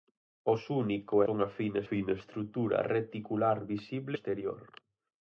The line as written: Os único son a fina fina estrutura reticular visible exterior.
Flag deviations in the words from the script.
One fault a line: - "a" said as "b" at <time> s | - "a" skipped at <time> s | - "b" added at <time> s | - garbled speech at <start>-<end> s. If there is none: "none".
none